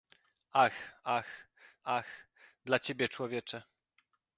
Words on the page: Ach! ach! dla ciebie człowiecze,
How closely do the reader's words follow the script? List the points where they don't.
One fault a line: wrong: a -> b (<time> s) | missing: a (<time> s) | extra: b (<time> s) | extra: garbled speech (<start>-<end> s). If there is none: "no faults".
extra: ach (1.8 s)